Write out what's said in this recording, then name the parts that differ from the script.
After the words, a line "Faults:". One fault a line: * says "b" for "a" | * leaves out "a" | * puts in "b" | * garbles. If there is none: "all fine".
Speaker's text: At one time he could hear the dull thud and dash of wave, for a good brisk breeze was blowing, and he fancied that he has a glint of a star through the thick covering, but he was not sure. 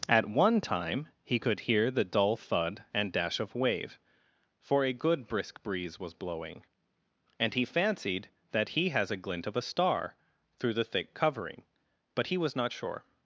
At one time he could hear the dull thud and dash of wave, for a good brisk breeze was blowing, and he fancied that he has a glint of a star through the thick covering, but he was not sure.
Faults:
all fine